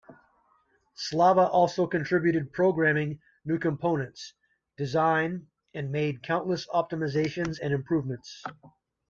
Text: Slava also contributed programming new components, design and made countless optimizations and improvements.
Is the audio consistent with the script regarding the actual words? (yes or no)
yes